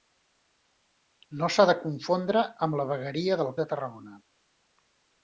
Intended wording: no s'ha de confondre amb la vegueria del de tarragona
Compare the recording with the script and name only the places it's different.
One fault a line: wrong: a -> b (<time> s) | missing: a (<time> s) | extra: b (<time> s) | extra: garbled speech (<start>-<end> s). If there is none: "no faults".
no faults